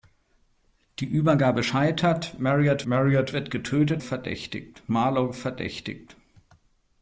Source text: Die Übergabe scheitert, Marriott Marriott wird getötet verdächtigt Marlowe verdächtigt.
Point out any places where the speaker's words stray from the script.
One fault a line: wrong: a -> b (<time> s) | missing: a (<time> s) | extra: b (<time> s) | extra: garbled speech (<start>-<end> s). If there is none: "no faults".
no faults